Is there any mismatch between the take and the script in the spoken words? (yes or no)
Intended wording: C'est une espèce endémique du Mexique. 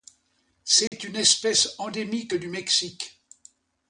no